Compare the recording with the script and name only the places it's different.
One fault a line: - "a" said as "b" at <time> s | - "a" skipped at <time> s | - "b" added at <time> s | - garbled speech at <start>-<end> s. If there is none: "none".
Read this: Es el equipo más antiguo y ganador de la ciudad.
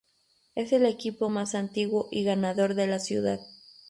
none